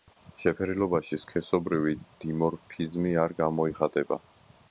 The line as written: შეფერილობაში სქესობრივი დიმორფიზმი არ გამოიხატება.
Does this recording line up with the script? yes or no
yes